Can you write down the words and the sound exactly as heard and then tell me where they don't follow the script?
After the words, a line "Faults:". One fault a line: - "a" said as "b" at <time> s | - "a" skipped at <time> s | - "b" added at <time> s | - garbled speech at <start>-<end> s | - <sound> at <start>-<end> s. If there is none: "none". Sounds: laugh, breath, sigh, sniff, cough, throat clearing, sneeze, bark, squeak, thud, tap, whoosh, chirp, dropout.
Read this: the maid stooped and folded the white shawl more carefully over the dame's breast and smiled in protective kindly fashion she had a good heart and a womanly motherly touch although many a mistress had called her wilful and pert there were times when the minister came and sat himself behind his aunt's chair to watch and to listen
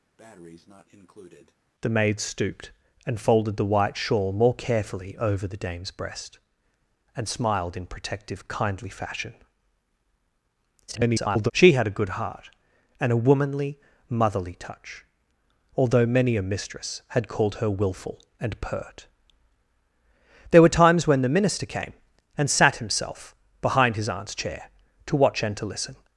the maid stooped and folded the white shawl more carefully over the dame's breast and smiled in protective kindly fashion [garbled] she had a good heart and a womanly motherly touch although many a mistress had called her wilful and pert there were times when the minister came and sat himself behind his aunt's chair to watch and to listen
Faults:
- breath at 0.2-1.6 s
- garbled speech at 10.9-11.5 s